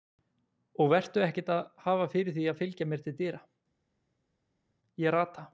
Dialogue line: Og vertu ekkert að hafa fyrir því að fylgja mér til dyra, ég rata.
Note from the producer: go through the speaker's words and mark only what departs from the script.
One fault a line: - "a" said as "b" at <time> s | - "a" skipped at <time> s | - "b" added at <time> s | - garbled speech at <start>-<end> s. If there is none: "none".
none